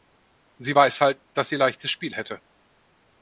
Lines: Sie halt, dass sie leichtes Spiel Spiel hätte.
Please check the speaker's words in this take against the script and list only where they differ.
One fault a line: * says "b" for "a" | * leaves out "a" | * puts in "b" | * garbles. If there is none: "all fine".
* puts in "weiß"
* leaves out "Spiel"